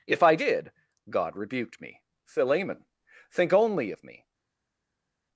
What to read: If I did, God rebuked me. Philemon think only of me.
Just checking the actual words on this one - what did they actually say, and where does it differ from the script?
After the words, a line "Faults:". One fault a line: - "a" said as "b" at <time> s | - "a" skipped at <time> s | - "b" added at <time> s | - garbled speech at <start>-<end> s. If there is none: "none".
If I did, God rebuked me. Philemon think only of me.
Faults:
none